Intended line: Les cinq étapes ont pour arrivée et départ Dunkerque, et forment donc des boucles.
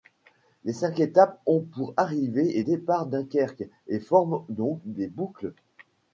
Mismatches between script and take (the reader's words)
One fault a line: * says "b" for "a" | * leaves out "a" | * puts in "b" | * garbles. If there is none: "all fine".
all fine